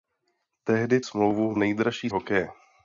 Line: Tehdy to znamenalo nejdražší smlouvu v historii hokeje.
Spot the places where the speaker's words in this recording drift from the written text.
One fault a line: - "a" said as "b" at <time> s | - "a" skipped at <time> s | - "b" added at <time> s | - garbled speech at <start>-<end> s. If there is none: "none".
- "to znamenalo nejdražší" skipped at 1.0 s
- "historii" said as "nejdražší" at 1.6 s